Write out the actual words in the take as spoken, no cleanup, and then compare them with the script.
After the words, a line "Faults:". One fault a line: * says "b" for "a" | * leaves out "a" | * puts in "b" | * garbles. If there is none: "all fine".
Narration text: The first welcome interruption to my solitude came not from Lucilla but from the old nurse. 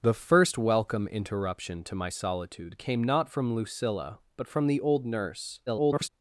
The first welcome interruption to my solitude came not from Lucilla but from the old nurse. [garbled]
Faults:
* garbles